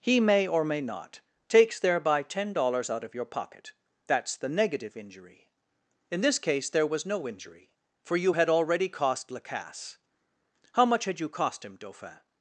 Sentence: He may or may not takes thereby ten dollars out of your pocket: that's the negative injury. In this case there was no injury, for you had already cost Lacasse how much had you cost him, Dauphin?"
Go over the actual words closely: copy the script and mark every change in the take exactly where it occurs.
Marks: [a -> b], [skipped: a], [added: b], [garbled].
He may or may not takes thereby ten dollars out of your pocket: that's the negative injury. In this case there was no injury, for you had already cost Lacasse how much had you cost him, Dauphin?"